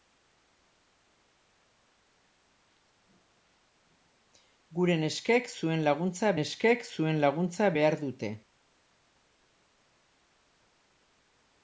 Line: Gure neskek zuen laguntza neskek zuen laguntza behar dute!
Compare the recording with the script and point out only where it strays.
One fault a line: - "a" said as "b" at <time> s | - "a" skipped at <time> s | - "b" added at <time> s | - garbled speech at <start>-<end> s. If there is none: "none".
none